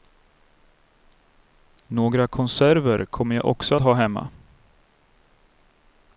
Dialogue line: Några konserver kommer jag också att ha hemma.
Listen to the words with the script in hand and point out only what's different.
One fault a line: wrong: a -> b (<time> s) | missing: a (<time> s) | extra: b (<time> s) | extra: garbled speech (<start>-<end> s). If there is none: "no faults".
missing: att (3.8 s)